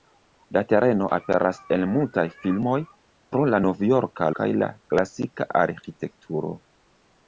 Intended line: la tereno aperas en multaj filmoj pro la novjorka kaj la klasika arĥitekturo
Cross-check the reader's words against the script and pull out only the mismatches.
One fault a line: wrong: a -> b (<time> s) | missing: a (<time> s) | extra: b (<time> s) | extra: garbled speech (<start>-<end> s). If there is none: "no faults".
no faults